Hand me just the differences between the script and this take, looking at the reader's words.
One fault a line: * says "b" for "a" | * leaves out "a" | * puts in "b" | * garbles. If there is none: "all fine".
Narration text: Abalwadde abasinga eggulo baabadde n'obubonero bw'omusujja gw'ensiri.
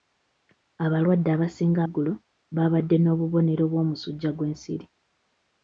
all fine